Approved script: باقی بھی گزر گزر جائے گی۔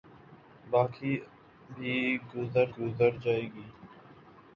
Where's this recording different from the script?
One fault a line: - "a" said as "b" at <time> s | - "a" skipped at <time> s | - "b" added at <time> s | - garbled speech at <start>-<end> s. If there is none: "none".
none